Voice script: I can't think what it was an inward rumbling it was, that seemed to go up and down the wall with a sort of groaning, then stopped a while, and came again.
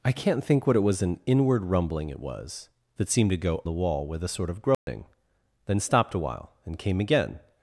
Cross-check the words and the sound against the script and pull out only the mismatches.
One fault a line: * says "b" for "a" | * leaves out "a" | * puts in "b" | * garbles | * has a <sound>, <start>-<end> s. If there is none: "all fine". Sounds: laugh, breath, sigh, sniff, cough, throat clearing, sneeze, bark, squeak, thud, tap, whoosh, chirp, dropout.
* leaves out "up and down"
* has a dropout, 4.7-4.9 s